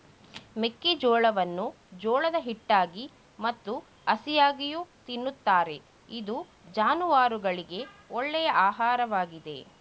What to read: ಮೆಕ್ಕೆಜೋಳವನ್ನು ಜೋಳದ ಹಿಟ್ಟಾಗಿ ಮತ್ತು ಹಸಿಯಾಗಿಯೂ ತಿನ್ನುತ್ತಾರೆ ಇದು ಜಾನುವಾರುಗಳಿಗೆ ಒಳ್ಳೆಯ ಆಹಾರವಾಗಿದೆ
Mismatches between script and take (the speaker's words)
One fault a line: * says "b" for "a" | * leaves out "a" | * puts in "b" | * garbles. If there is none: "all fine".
all fine